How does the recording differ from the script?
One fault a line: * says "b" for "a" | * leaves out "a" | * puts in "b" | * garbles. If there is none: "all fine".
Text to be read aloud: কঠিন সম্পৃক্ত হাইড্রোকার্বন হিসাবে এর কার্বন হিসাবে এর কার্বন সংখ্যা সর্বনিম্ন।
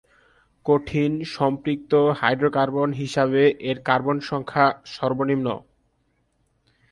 * leaves out "হিসাবে এর কার্বন"